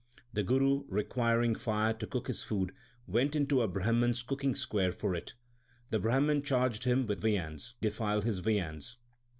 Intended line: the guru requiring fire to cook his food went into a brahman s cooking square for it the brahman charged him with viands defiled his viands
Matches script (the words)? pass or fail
pass